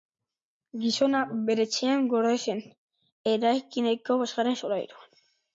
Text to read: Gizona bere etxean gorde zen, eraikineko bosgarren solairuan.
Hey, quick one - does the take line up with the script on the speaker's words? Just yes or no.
yes